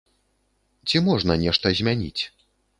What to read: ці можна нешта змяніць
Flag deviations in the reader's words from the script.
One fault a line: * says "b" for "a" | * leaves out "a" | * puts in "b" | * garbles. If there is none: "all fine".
all fine